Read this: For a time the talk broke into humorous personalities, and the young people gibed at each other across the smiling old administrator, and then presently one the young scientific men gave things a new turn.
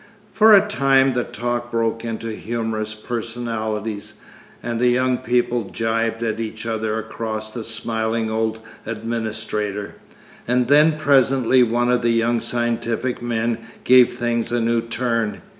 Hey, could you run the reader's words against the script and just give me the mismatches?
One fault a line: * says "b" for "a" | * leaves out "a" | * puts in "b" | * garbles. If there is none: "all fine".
* puts in "of"